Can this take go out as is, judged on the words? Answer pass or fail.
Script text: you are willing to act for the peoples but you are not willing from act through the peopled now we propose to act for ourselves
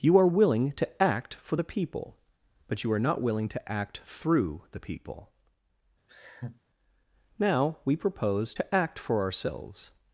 fail